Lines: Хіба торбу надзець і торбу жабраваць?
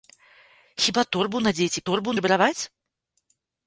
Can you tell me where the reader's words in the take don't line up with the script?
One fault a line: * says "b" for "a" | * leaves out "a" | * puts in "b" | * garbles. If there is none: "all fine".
all fine